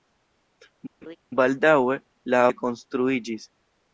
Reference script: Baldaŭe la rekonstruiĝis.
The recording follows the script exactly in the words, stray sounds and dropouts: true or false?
false